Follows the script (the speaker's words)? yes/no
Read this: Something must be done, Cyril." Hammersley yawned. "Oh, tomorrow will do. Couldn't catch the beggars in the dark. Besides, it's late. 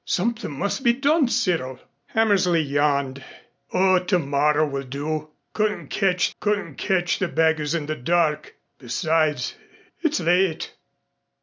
no